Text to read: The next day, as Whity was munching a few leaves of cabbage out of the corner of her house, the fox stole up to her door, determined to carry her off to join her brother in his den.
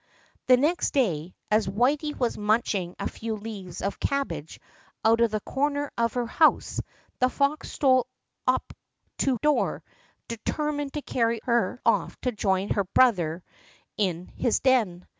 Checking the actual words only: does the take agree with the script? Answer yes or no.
no